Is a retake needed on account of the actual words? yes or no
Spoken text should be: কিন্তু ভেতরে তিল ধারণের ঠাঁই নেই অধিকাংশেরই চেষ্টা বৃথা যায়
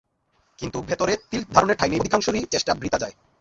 no